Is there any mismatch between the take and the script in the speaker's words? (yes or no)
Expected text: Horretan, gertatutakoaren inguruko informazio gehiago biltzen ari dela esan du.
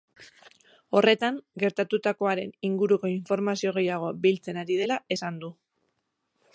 no